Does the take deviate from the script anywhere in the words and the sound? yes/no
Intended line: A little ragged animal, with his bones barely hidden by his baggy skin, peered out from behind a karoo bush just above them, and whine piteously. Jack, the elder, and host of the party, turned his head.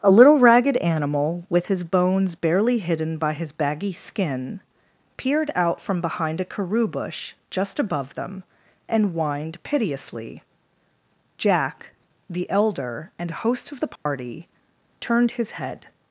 yes